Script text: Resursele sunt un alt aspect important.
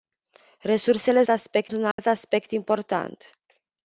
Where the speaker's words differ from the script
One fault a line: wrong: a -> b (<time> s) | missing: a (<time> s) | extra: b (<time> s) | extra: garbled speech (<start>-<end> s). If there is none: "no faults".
wrong: sunt -> aspect (1.3 s)